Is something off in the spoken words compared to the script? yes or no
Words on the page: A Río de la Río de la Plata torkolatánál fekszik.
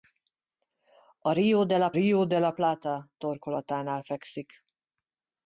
no